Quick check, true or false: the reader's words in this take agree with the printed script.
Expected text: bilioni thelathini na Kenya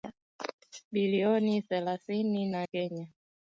true